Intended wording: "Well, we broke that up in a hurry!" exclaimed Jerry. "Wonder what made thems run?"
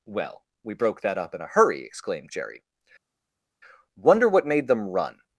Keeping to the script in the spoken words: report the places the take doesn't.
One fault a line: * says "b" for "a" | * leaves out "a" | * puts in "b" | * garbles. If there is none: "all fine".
* says "them" for "thems"